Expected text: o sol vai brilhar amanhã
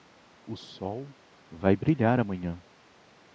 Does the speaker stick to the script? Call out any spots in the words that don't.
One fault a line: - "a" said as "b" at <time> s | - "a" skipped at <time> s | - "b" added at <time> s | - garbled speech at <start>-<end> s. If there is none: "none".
none